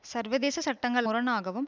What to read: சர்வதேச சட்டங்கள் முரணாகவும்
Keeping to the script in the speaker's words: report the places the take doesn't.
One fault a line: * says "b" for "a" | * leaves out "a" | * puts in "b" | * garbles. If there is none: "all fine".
all fine